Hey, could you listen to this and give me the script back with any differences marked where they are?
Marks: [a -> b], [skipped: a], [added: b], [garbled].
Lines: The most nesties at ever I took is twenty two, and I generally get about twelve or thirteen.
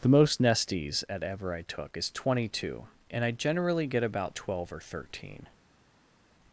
The most nesties at ever I took is twenty two, and I generally get about twelve or thirteen.